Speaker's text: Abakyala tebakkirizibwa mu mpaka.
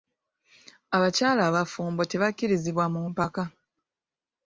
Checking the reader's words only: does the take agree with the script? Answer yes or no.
no